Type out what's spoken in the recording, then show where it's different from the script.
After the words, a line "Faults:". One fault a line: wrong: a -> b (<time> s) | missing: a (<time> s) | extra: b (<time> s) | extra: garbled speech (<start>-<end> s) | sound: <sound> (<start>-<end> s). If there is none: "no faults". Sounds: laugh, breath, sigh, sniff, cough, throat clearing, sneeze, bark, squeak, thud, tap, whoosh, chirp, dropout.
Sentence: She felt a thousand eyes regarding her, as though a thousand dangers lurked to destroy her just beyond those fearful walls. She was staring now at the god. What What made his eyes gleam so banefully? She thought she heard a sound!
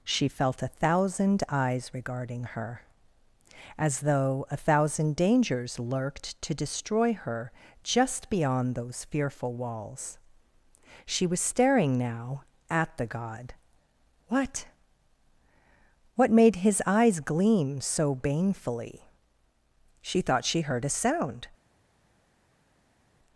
She felt a thousand eyes regarding her, as though a thousand dangers lurked to destroy her just beyond those fearful walls. She was staring now at the god. What What made his eyes gleam so banefully? She thought she heard a sound!
Faults:
no faults